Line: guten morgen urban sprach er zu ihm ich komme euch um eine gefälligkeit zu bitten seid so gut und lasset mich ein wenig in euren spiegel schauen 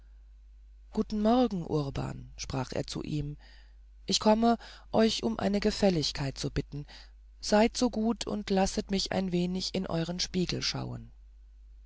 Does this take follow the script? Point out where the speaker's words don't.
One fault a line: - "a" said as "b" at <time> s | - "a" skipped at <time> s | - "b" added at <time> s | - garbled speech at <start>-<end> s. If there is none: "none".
none